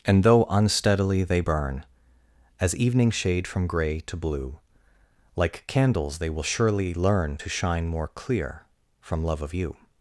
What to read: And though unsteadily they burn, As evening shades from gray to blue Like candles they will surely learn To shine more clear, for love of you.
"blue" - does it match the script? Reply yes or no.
yes